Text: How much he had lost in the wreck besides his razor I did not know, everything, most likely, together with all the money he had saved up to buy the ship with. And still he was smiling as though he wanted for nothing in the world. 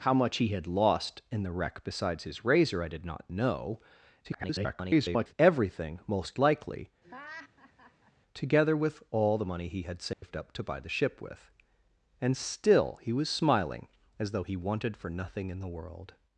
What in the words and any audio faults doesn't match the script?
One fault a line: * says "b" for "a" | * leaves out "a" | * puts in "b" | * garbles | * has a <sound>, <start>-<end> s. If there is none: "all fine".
* garbles
* has a laugh, 7.0-8.1 s
* has a dropout, 10.1-10.2 s